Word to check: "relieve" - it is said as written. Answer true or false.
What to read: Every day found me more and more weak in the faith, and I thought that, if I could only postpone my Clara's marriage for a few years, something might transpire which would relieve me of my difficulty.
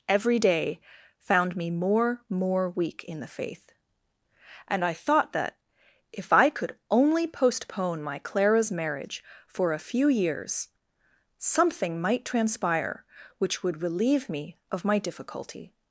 true